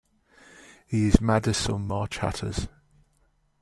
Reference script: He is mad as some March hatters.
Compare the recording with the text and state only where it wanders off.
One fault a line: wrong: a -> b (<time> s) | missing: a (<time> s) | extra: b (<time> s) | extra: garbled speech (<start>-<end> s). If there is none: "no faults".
no faults